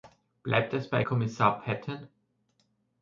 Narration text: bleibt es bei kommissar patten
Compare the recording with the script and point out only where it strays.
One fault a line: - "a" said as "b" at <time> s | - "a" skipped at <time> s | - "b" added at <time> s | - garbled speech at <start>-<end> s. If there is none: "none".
none